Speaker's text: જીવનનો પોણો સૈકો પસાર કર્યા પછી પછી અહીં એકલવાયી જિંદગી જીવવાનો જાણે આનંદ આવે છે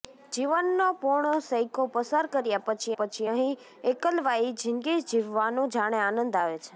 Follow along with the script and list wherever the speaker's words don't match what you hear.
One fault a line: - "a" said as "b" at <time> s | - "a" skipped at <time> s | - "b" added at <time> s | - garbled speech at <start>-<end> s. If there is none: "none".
none